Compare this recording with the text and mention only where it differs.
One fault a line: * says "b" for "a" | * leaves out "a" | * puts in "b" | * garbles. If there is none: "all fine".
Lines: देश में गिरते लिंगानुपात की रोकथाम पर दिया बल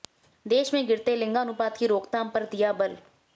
all fine